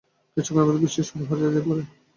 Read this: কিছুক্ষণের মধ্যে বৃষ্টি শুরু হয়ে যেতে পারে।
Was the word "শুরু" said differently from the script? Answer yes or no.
no